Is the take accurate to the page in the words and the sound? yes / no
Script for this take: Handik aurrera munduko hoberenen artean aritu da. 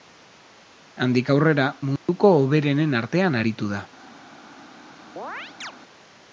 no